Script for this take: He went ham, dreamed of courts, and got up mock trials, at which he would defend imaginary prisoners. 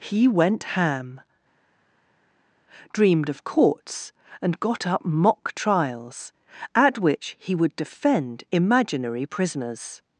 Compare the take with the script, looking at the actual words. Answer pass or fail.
pass